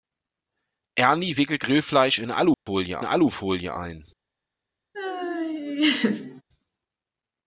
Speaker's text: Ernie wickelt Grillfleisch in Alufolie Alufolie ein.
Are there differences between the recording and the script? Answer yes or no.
no